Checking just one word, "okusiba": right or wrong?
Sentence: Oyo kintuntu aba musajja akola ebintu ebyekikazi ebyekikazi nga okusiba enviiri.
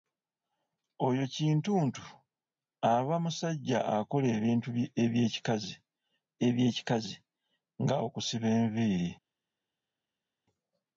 right